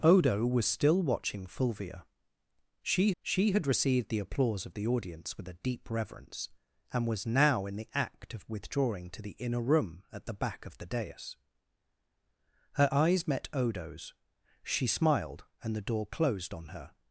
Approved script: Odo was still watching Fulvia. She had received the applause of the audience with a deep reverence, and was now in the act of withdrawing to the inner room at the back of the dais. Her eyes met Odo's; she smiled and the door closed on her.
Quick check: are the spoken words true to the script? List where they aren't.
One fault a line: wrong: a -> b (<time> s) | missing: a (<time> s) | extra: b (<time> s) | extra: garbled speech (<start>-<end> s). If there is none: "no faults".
extra: she (3.2 s)